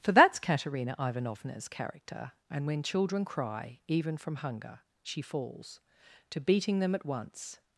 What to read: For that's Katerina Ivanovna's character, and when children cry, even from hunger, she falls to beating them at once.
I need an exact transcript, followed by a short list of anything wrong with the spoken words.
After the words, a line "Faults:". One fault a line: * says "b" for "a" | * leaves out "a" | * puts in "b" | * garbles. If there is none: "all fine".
For that's Katerina Ivanovna's character, and when children cry, even from hunger, she falls to beating them at once.
Faults:
all fine